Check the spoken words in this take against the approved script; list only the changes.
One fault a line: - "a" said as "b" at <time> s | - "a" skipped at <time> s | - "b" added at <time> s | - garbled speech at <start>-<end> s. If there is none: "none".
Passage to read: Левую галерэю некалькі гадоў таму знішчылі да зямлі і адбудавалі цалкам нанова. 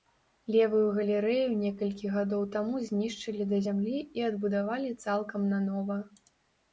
none